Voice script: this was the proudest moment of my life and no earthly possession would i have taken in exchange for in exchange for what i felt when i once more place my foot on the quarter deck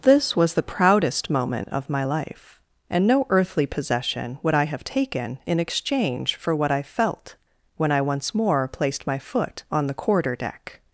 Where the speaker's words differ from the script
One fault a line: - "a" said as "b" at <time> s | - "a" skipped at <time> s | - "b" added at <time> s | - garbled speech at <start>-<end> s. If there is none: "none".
- "in exchange for" skipped at 6.6 s
- "place" said as "placed" at 8.7 s